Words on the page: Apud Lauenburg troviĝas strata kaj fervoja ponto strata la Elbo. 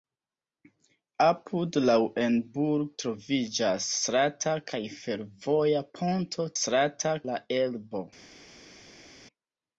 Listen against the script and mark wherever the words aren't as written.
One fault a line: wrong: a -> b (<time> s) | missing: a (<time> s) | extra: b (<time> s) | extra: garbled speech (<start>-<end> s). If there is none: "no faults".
no faults